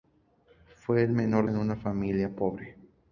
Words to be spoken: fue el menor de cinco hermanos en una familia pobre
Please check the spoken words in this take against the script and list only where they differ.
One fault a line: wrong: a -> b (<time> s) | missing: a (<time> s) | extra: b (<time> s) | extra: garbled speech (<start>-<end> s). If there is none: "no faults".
missing: de cinco hermanos (1.5 s)